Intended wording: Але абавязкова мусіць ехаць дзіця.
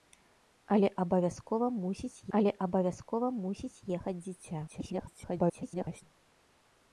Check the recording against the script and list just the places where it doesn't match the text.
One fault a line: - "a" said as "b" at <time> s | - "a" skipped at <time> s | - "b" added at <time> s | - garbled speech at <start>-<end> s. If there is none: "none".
- "але абавязкова мусіць" added at 2.4 s
- garbled speech at 4.7-6.0 s